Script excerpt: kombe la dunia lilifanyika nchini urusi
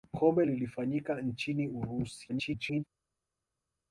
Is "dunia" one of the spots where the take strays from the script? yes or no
yes